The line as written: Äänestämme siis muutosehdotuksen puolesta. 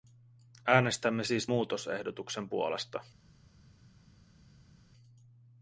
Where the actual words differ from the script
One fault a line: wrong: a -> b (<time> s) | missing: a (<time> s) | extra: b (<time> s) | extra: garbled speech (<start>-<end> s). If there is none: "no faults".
no faults